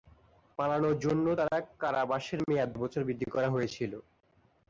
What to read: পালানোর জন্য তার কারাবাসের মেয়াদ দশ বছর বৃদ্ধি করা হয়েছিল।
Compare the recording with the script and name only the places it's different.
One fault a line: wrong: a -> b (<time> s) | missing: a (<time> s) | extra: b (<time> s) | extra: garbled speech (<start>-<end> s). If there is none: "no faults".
missing: দশ (2.7 s)